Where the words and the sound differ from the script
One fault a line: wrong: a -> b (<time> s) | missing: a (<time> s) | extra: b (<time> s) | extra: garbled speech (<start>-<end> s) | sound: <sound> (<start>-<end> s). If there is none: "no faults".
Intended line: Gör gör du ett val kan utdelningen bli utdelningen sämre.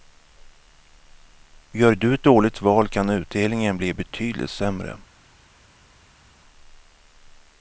missing: gör (1.9 s)
extra: dåligt (2.2 s)
wrong: utdelningen -> betydligt (3.9 s)